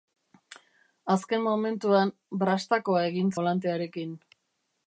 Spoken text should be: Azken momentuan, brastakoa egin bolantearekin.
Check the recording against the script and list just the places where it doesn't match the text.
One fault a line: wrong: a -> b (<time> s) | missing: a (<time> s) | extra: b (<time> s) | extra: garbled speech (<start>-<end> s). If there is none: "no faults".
no faults